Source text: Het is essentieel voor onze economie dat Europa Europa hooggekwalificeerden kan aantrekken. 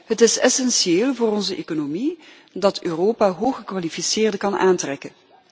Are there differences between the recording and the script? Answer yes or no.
yes